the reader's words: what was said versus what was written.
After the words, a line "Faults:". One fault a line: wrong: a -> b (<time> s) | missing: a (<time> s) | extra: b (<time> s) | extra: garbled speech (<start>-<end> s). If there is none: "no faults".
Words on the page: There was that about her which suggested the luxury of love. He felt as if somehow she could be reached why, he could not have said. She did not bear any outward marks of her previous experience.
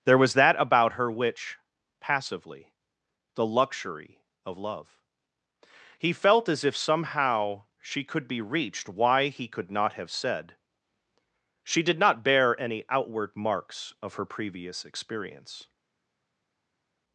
There was that about her which passively the luxury of love. He felt as if somehow she could be reached why, he could not have said. She did not bear any outward marks of her previous experience.
Faults:
wrong: suggested -> passively (2.0 s)